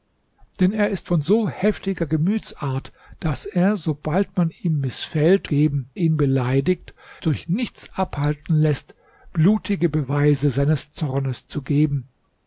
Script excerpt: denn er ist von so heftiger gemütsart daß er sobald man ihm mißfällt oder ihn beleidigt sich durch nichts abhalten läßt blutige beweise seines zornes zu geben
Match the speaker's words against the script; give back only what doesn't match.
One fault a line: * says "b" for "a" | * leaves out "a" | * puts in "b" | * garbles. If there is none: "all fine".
* says "geben" for "oder"
* leaves out "sich"